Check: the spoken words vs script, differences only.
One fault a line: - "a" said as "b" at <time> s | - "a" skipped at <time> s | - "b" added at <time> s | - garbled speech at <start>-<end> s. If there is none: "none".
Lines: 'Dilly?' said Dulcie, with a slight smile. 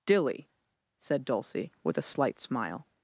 none